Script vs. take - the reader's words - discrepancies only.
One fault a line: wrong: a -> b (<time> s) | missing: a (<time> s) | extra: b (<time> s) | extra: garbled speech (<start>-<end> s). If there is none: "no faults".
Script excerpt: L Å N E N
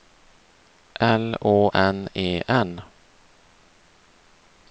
no faults